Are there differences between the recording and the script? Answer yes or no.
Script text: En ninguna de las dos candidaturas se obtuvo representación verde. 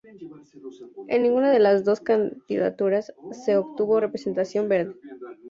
no